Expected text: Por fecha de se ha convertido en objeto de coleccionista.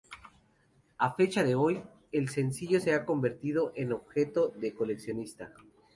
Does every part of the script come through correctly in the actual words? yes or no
no